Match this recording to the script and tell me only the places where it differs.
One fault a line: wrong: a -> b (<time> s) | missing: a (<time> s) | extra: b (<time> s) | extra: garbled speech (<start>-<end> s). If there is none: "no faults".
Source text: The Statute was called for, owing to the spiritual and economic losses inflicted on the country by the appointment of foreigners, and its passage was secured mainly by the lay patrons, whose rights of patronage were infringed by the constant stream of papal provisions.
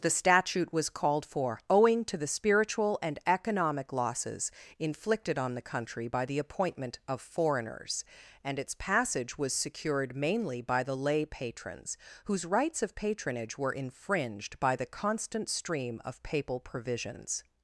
no faults